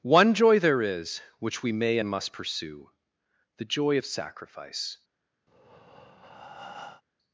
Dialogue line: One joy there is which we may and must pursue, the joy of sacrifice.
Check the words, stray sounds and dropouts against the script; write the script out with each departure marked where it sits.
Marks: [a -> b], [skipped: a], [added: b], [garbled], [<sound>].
One joy there is which we may and must pursue, the joy of sacrifice. [breath]